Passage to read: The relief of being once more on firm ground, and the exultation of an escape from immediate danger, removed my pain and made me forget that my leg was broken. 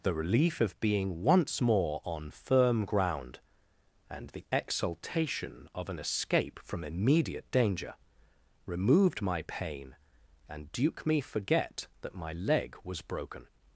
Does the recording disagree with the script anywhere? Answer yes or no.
yes